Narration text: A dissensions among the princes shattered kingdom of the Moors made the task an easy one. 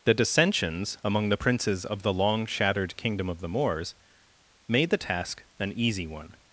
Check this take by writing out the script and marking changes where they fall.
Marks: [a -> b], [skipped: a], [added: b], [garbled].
[A -> The] dissensions among the princes [added: of the long] shattered kingdom of the Moors made the task an easy one.